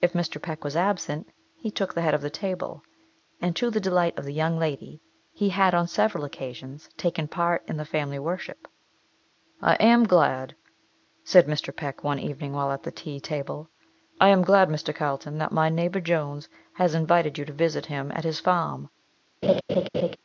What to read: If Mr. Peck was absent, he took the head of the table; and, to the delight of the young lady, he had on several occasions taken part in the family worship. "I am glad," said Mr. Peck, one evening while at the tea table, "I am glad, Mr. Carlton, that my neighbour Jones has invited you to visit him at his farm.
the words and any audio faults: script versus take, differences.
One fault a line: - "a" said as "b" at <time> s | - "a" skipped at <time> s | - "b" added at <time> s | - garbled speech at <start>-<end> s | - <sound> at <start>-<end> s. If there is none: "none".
- laugh at 19.4-20.2 s